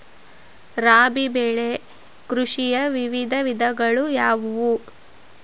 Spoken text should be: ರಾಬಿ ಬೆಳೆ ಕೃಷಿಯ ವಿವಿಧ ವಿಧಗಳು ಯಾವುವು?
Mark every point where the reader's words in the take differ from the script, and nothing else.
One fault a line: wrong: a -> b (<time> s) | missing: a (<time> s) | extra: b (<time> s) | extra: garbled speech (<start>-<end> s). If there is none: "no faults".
no faults